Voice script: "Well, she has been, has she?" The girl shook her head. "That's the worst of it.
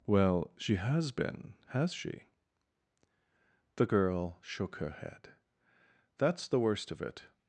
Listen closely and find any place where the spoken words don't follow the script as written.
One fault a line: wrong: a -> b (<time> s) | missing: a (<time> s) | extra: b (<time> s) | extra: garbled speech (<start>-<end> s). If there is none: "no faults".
no faults